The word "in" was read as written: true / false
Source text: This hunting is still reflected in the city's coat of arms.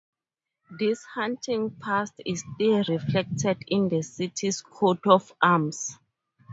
true